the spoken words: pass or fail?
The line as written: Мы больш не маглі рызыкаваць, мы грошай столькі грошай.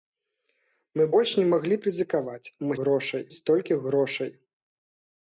pass